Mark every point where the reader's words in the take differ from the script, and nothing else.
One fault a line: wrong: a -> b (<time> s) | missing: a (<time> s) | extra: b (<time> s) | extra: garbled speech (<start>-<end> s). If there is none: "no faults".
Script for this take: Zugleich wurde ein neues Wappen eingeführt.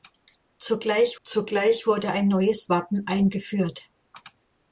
extra: zugleich (1.2 s)